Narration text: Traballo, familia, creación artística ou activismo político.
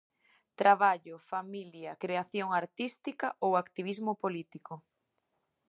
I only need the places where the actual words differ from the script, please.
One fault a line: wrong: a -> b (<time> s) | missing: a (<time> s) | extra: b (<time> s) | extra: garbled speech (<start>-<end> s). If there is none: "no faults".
no faults